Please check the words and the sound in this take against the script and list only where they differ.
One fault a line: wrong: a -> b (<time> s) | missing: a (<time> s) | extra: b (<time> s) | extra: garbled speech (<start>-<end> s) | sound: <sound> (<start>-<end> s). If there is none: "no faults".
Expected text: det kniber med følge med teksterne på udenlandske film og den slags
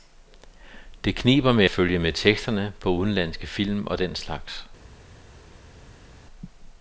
no faults